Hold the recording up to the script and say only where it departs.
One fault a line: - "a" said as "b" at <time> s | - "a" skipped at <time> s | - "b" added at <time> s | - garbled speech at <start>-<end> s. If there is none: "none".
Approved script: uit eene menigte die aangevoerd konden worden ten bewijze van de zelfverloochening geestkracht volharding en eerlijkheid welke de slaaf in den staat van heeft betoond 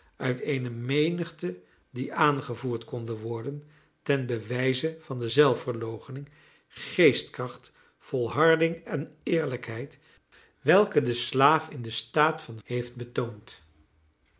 none